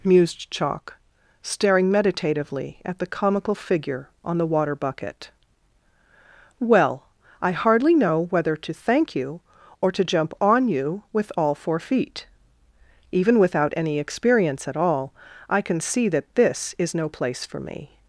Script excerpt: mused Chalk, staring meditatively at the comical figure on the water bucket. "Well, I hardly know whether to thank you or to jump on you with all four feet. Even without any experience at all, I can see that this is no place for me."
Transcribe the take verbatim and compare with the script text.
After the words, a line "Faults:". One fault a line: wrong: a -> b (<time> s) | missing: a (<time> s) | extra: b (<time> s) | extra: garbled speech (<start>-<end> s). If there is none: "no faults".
mused Chalk, staring meditatively at the comical figure on the water bucket. "Well, I hardly know whether to thank you or to jump on you with all four feet. Even without any experience at all, I can see that this is no place for me."
Faults:
no faults